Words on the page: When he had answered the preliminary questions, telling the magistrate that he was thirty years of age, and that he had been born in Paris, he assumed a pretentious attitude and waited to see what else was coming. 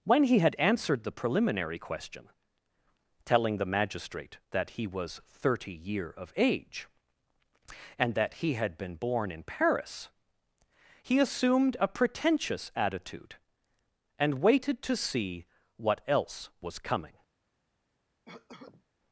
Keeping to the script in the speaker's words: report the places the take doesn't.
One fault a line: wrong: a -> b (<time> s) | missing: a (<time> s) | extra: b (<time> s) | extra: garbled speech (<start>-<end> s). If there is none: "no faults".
wrong: questions -> question (1.8 s)
wrong: years -> year (5.7 s)